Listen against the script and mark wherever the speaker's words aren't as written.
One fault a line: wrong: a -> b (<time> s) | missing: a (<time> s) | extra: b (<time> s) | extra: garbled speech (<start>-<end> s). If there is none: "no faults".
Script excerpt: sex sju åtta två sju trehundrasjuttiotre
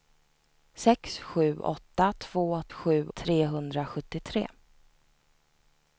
no faults